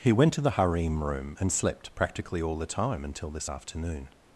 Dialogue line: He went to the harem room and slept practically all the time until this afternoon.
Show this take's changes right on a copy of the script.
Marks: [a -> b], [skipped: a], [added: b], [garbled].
He went to the harem room and slept practically all the time until this afternoon.